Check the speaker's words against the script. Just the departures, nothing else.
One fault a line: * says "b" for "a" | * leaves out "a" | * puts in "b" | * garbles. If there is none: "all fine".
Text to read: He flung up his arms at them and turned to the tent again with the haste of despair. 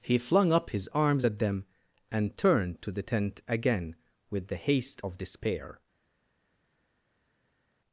all fine